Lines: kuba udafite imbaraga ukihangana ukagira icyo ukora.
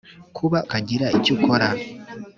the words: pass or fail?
fail